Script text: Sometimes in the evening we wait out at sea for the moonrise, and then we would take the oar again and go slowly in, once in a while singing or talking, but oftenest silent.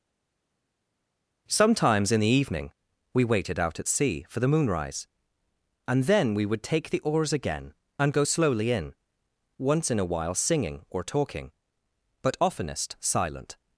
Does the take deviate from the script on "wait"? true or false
true